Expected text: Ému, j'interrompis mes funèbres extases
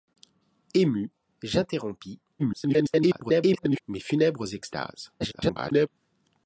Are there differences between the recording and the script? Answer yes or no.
yes